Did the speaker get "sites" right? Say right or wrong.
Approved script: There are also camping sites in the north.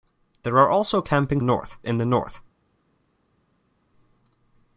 wrong